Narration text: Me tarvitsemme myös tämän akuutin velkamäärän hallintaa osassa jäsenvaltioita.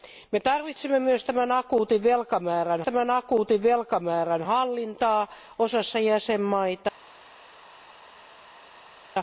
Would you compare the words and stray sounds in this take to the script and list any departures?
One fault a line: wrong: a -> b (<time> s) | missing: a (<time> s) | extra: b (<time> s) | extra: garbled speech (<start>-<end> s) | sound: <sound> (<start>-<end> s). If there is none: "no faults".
extra: tämän akuutin velkamäärän (2.8 s)